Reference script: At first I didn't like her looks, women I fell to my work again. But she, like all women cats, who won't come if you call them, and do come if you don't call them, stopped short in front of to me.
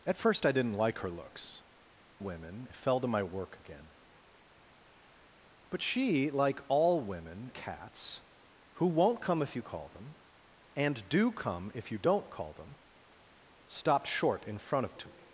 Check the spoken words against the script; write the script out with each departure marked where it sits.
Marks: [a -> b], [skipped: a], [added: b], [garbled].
At first I didn't like her looks, women I fell to my work again. But she, like all women cats, who won't come if you call them, and do come if you don't call them, stopped short in front of to me.